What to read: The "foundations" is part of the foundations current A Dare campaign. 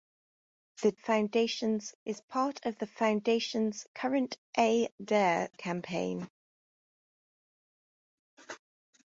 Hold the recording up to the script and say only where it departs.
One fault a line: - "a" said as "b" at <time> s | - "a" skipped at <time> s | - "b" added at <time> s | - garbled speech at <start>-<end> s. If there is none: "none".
none